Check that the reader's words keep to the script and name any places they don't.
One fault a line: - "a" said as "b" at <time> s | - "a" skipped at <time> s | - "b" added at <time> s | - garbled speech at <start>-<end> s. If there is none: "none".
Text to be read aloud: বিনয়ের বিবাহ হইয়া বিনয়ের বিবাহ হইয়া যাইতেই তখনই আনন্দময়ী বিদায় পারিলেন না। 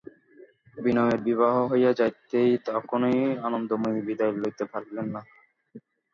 - "বিনয়ের বিবাহ হইয়া" skipped at 1.9 s
- "লইতে" added at 4.3 s